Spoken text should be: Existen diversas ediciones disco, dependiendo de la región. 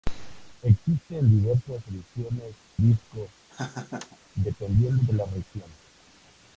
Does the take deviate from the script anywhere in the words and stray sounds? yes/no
yes